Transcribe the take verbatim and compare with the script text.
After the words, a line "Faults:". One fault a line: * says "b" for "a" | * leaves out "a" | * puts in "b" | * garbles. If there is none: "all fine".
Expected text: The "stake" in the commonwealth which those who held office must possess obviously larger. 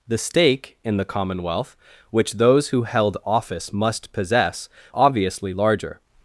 The "stake" in the commonwealth which those who held office must possess obviously larger.
Faults:
all fine